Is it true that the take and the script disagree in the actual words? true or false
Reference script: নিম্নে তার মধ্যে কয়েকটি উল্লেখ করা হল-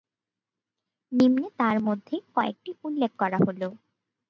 false